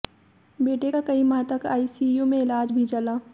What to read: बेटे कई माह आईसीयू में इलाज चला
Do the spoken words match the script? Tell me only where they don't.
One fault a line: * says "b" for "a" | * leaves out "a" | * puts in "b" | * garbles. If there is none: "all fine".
* puts in "का"
* puts in "तक"
* puts in "भी"